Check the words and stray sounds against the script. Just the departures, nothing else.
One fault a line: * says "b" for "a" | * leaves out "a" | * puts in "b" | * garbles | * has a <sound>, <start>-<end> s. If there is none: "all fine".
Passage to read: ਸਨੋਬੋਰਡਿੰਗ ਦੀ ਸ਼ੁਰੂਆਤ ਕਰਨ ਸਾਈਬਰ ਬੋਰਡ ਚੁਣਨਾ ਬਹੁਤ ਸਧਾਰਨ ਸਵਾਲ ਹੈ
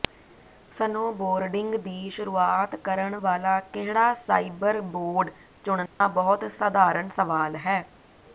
* puts in "ਵਾਲਾ ਕਿਹੜਾ"
* has a dropout, 5.9-6.0 s